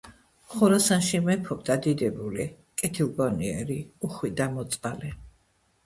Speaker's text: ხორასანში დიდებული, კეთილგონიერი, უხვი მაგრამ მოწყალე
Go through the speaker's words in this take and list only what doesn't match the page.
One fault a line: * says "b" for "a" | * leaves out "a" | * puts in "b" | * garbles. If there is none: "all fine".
* puts in "მეფობდა"
* says "და" for "მაგრამ"